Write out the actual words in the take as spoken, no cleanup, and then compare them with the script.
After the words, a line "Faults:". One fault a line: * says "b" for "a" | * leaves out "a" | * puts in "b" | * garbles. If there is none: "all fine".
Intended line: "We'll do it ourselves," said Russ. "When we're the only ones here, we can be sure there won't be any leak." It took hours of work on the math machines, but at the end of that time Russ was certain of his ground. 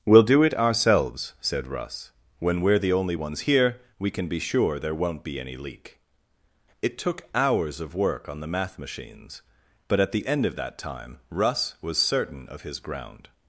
"We'll do it ourselves," said Russ. "When we're the only ones here, we can be sure there won't be any leak." It took hours of work on the math machines, but at the end of that time Russ was certain of his ground.
Faults:
all fine